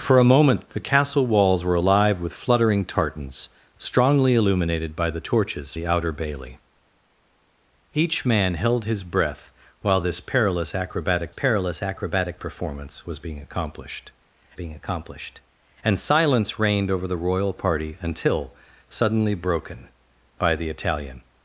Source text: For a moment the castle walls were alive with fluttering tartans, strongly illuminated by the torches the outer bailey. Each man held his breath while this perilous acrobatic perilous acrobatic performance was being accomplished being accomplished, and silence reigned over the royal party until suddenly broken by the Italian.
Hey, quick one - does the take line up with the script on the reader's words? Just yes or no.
yes